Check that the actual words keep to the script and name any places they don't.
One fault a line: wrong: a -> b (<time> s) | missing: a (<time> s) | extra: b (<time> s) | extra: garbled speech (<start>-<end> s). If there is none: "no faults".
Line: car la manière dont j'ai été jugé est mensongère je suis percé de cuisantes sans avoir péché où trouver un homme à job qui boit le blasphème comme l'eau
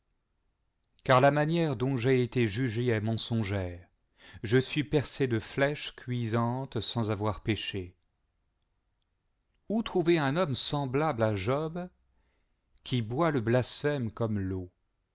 extra: flèches (5.4 s)
extra: semblable (10.6 s)